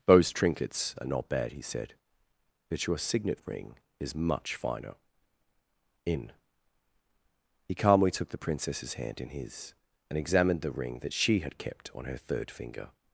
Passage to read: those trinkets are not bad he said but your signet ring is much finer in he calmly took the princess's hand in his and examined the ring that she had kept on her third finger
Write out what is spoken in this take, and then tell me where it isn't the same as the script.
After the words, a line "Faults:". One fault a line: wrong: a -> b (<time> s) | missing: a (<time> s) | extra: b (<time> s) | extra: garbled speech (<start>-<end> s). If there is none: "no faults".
those trinkets are not bad he said but your signet ring is much finer in he calmly took the princess's hand in his and examined the ring that she had kept on her third finger
Faults:
no faults